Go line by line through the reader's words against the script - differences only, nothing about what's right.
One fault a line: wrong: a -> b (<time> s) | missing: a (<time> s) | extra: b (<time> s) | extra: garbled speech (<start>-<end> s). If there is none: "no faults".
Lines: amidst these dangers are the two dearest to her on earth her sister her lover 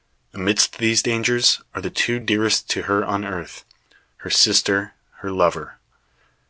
no faults